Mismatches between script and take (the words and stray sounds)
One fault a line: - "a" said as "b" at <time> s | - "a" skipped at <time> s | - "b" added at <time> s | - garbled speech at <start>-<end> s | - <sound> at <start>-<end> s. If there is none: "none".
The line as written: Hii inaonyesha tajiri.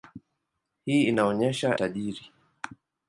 none